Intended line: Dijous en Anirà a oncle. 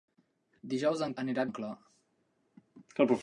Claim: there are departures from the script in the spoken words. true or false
false